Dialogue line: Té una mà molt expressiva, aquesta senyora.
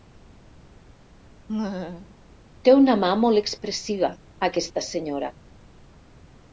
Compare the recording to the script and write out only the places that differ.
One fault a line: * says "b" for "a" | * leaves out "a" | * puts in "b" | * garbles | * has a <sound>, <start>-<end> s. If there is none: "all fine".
* has a laugh, 1.5-2.2 s